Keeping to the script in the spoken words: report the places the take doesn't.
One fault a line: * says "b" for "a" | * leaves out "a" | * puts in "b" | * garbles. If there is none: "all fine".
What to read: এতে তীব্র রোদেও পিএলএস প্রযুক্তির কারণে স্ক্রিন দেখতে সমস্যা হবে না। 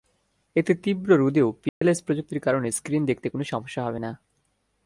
* puts in "কোনো"